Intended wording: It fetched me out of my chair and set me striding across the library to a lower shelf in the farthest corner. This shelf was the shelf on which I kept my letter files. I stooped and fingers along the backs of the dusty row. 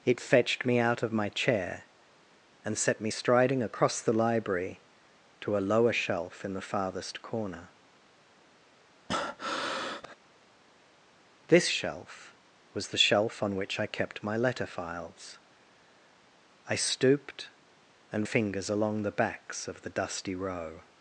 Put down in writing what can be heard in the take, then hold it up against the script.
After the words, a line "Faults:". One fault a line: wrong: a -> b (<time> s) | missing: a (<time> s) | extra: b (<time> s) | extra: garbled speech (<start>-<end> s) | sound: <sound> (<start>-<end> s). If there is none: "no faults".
It fetched me out of my chair and set me striding across the library to a lower shelf in the farthest corner. This shelf was the shelf on which I kept my letter files. I stooped and fingers along the backs of the dusty row.
Faults:
sound: breath (9.1-10.2 s)